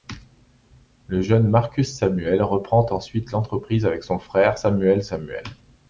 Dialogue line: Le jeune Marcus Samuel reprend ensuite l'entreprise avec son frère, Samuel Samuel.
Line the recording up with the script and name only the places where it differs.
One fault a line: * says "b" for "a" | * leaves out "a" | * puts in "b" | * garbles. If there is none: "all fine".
all fine